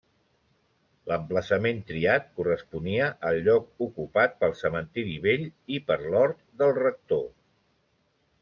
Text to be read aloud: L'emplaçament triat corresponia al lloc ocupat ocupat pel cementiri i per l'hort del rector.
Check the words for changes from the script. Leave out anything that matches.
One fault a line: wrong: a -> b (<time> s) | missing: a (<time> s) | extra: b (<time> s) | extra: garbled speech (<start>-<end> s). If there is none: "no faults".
missing: ocupat (4.3 s)
extra: vell (5.3 s)